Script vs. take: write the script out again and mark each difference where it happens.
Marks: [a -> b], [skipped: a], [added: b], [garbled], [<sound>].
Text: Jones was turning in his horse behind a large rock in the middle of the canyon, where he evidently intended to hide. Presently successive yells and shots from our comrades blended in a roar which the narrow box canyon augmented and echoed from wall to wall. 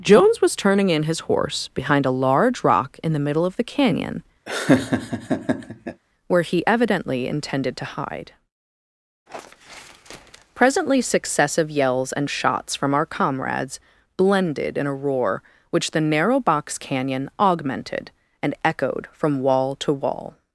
Jones was turning in his horse behind a large rock in the middle of the canyon, [laugh] where he evidently intended to hide. Presently successive yells and shots from our comrades blended in a roar which the narrow box canyon augmented and echoed from wall to wall.